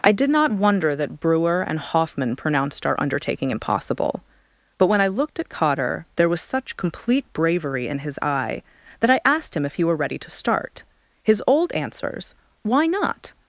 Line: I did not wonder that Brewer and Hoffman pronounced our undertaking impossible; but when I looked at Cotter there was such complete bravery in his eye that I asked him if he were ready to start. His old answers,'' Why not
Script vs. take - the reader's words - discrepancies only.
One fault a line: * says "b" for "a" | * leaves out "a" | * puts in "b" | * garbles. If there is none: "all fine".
all fine